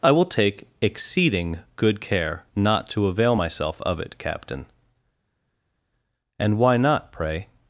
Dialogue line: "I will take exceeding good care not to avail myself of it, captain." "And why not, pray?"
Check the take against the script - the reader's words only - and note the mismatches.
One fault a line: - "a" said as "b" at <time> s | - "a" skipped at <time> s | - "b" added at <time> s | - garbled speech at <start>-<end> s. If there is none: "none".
none